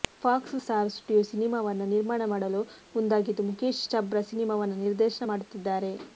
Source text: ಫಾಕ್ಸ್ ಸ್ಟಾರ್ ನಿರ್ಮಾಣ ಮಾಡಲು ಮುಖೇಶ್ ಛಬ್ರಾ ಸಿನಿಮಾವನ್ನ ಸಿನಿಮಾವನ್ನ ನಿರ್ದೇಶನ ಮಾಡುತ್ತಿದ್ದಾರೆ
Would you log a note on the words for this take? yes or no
yes